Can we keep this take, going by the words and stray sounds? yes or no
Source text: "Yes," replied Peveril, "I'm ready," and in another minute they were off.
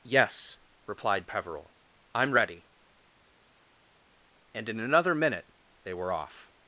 yes